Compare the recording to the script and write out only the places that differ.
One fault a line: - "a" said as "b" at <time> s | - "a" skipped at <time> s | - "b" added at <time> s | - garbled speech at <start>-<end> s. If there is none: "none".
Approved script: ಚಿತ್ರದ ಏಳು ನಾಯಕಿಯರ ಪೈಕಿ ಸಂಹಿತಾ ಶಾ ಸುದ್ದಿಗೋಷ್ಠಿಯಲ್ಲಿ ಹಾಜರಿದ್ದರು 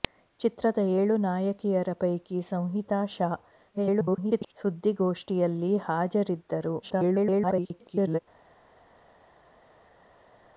- garbled speech at 3.7-4.5 s
- garbled speech at 6.8-8.2 s